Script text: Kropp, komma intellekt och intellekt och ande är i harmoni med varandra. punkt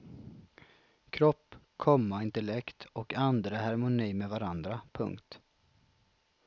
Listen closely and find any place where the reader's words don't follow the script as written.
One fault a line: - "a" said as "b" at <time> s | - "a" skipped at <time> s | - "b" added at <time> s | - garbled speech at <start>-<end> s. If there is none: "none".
- "intellekt och" skipped at 3.1 s